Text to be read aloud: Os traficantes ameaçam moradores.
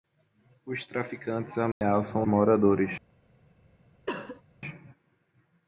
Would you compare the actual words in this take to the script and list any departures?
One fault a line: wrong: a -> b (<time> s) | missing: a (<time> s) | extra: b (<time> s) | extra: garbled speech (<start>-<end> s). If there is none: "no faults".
no faults